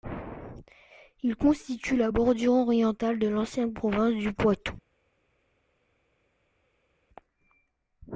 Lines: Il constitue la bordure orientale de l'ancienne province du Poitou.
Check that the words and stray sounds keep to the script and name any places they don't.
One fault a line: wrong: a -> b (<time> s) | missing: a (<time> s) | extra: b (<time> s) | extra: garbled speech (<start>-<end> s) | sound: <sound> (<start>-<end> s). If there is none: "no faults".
no faults